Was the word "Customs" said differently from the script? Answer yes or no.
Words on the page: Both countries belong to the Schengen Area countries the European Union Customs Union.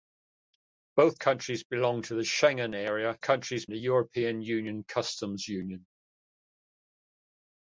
no